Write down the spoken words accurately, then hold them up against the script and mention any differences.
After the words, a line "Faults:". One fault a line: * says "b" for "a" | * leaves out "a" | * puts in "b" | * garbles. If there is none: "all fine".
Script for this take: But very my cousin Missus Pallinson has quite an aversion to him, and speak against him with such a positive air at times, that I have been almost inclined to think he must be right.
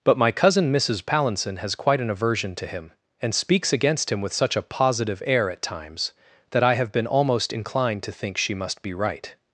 But my cousin Missus Pallinson has quite an aversion to him, and speaks against him with such a positive air at times, that I have been almost inclined to think she must be right.
Faults:
* leaves out "very"
* says "speaks" for "speak"
* says "she" for "he"